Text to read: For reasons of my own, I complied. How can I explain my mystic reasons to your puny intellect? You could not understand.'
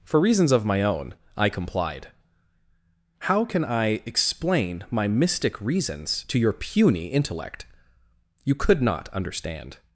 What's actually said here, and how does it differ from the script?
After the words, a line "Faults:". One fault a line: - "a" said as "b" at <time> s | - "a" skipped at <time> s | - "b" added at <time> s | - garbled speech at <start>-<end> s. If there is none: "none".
For reasons of my own, I complied. How can I explain my mystic reasons to your puny intellect? You could not understand.'
Faults:
none